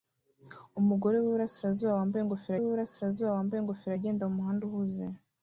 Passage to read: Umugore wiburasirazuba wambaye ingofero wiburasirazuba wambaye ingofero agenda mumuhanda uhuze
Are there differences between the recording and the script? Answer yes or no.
no